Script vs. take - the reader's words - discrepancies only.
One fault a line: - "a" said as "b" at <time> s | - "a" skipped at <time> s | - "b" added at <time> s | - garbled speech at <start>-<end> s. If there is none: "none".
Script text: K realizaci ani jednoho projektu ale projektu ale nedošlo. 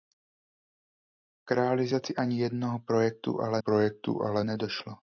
none